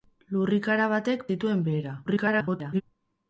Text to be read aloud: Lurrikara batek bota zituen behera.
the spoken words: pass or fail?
fail